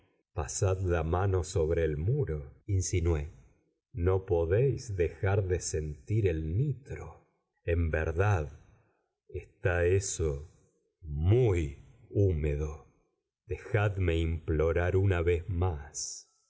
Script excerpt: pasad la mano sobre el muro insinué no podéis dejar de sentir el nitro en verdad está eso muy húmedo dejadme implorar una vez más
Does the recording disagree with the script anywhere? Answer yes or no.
no